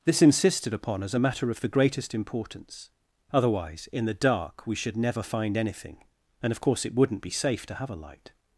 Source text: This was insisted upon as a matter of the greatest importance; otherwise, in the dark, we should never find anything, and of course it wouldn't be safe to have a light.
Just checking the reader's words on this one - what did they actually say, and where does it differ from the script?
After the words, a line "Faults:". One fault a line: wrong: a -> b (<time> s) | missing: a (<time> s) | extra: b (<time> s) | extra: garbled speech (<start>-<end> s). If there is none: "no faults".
This insisted upon as a matter of the greatest importance; otherwise, in the dark, we should never find anything, and of course it wouldn't be safe to have a light.
Faults:
missing: was (0.2 s)